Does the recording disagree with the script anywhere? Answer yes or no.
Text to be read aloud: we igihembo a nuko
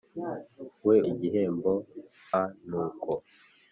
no